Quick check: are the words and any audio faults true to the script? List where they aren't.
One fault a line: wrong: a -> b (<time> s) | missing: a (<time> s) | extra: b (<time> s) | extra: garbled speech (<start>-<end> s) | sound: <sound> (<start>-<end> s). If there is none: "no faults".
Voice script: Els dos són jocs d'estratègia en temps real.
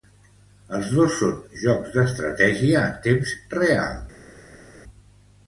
no faults